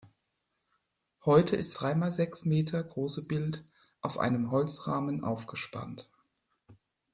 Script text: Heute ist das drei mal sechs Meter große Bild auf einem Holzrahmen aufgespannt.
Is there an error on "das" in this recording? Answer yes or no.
yes